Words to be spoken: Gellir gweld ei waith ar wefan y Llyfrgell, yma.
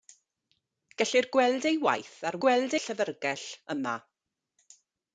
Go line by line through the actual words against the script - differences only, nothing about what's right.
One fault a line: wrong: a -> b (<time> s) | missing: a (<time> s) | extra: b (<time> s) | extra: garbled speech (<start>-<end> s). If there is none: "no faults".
wrong: wefan -> gweld (2.4 s)